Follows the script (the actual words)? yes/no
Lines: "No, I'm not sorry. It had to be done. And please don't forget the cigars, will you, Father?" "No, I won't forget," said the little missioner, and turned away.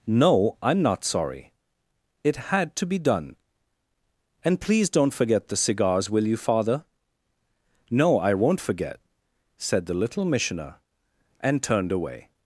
yes